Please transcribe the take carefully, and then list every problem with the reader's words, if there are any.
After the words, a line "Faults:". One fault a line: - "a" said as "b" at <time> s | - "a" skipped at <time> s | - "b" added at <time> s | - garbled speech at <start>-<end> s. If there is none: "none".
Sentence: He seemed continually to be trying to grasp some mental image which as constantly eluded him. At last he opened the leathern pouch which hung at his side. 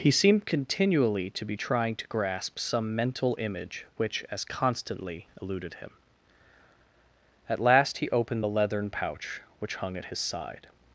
He seemed continually to be trying to grasp some mental image which as constantly eluded him. At last he opened the leathern pouch which hung at his side.
Faults:
none